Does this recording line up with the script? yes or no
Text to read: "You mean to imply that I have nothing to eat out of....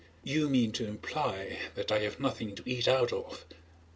yes